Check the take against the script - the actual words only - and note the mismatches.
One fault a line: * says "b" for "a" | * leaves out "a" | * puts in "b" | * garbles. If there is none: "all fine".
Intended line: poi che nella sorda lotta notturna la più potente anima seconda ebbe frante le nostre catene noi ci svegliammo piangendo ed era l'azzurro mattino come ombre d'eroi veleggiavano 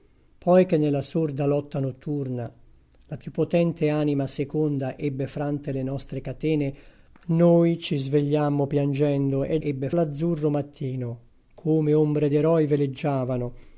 * says "ebbe" for "era"